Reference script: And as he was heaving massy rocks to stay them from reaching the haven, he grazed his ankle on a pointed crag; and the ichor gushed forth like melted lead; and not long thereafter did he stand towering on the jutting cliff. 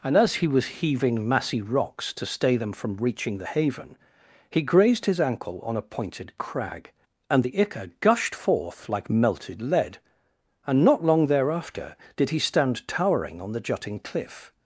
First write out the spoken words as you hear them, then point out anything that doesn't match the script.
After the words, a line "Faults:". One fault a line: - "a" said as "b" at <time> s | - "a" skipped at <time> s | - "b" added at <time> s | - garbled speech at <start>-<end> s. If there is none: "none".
And as he was heaving massy rocks to stay them from reaching the haven, he grazed his ankle on a pointed crag; and the ichor gushed forth like melted lead; and not long thereafter did he stand towering on the jutting cliff.
Faults:
none